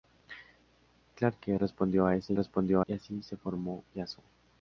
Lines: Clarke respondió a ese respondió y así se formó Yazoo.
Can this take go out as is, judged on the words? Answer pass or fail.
pass